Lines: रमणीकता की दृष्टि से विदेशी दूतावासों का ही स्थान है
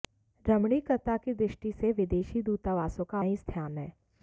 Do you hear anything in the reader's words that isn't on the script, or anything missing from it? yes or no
no